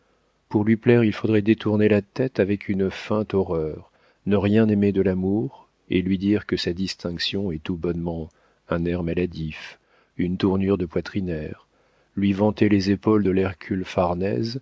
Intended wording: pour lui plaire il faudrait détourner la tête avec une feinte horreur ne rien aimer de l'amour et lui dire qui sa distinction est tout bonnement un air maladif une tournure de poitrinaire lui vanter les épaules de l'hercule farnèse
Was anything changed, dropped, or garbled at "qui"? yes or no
yes